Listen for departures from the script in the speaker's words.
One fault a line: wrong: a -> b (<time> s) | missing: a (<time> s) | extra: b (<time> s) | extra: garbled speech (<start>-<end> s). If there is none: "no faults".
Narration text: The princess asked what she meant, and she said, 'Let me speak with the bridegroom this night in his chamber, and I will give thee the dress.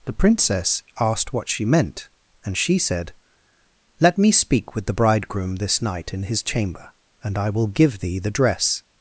no faults